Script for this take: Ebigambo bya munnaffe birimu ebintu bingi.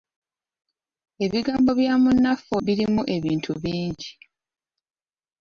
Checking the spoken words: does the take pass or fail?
pass